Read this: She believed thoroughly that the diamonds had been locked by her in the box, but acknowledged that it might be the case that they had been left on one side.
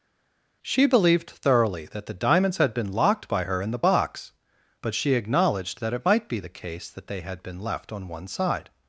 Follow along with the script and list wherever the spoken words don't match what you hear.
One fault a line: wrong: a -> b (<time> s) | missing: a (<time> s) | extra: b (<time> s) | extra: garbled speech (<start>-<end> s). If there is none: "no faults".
extra: she (4.9 s)